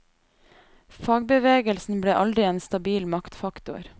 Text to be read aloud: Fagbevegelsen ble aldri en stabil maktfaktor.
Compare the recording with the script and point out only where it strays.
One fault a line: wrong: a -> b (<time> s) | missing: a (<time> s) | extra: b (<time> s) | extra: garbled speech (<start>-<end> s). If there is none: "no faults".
no faults